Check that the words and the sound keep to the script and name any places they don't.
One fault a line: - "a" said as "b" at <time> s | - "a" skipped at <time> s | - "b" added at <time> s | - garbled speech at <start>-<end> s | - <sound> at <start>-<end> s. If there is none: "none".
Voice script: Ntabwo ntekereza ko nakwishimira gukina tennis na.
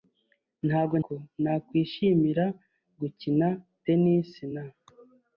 - "ntekereza" skipped at 0.9 s